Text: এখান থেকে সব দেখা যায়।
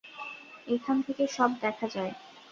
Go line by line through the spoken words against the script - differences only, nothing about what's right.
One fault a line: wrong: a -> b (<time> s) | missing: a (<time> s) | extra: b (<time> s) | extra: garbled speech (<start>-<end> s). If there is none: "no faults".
no faults